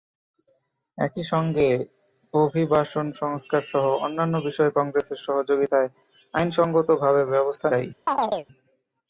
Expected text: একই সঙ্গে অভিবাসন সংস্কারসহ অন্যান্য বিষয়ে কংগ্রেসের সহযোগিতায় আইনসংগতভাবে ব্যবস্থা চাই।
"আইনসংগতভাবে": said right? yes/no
yes